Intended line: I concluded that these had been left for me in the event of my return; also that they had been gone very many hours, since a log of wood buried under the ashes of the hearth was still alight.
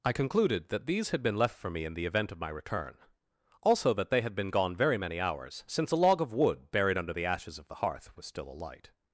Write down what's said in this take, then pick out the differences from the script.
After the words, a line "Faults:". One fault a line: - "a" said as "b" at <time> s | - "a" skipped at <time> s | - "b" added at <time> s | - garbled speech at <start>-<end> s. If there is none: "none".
I concluded that these had been left for me in the event of my return; also that they had been gone very many hours, since a log of wood buried under the ashes of the hearth was still alight.
Faults:
none